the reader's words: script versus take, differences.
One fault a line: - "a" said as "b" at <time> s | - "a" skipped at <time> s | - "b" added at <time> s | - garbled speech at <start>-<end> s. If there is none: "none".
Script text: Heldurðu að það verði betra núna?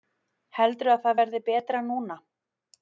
none